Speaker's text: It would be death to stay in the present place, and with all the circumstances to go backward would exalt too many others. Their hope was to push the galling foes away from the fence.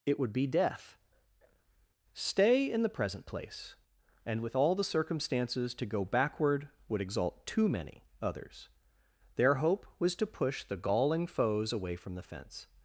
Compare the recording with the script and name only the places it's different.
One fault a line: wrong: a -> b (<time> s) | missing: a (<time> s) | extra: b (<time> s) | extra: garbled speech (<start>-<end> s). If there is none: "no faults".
missing: to (1.0 s)